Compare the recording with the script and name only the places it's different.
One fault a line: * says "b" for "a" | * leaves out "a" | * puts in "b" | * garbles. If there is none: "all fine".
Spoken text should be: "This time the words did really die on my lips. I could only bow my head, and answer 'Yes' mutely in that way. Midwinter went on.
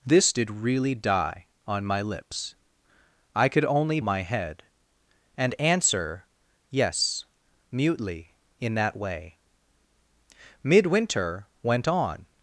* leaves out "time the words"
* leaves out "bow"